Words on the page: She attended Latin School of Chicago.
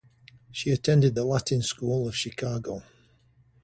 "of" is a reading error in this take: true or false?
false